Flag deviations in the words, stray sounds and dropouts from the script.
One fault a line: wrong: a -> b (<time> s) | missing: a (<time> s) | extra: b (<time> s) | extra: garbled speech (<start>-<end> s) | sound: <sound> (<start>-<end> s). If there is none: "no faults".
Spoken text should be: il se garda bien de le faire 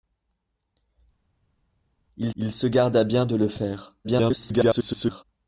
extra: il (2.4 s)
extra: garbled speech (4.0-5.2 s)